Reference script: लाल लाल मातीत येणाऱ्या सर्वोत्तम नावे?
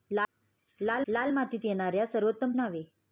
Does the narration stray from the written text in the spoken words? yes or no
no